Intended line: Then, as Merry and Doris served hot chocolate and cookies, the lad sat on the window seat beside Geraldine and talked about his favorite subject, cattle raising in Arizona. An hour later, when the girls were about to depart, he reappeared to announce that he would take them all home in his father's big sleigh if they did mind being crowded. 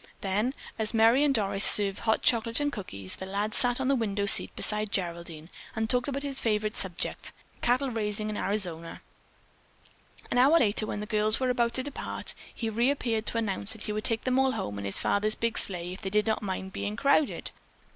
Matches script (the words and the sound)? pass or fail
fail